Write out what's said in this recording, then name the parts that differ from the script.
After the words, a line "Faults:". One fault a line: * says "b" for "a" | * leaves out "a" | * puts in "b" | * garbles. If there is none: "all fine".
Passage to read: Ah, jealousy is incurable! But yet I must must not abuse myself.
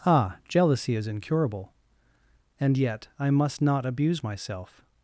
Ah, jealousy is incurable! And yet I must not abuse myself.
Faults:
* says "And" for "But"
* leaves out "must"